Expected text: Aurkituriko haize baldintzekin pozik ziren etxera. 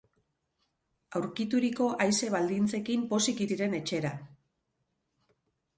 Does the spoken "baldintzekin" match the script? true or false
true